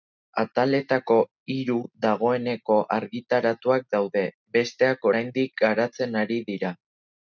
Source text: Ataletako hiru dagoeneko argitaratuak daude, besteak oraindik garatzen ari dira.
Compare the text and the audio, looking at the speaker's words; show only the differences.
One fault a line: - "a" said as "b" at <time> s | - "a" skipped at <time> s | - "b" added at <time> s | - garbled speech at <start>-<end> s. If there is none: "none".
none